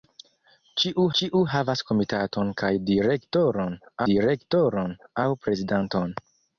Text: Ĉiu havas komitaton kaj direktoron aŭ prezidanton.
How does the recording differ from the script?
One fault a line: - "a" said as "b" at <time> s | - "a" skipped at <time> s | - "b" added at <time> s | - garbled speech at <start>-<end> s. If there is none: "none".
- "ĉiu" added at 1.2 s
- "direktoron" added at 4.1 s